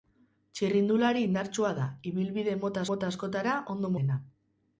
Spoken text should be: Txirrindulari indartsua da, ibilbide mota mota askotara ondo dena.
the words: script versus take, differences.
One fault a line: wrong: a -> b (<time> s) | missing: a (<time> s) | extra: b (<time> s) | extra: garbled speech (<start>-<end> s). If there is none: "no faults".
no faults